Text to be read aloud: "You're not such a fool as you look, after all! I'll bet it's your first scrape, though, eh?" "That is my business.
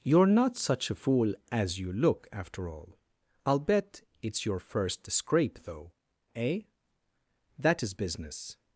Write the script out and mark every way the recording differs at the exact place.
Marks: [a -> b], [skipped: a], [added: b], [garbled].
"You're not such a fool as you look, after all! I'll bet it's your first scrape, though, eh?" "That is [skipped: my] business.